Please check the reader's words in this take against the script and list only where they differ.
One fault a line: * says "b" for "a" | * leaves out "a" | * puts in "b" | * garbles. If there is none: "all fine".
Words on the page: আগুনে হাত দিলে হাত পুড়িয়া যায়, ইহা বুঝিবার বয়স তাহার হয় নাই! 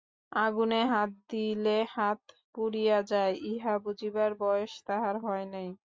all fine